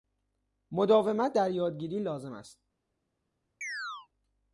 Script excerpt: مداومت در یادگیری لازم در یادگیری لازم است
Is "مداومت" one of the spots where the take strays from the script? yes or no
no